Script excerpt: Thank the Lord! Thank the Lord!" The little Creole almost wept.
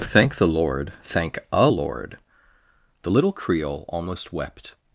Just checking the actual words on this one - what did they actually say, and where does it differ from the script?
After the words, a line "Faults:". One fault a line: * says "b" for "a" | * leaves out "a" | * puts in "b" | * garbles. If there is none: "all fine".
Thank the Lord! Thank a Lord!" The little Creole almost wept.
Faults:
* says "a" for "the"